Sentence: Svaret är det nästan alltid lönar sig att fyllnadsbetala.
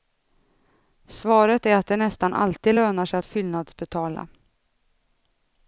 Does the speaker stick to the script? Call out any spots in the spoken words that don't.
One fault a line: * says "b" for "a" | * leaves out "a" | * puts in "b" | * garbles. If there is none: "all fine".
* puts in "att"